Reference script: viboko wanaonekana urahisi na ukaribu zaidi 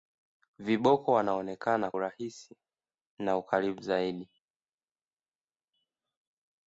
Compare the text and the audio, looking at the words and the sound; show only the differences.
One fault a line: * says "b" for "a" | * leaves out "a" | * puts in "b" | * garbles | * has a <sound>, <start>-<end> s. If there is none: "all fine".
all fine